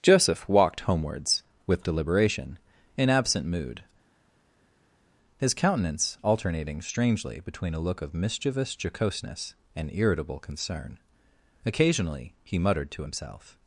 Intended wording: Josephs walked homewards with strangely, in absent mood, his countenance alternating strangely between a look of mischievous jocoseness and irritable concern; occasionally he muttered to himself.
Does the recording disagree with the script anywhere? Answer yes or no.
yes